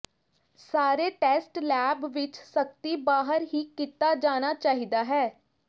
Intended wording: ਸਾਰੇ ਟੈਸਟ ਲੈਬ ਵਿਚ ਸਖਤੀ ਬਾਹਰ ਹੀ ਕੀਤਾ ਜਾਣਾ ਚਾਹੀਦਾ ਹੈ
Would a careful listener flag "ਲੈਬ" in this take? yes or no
no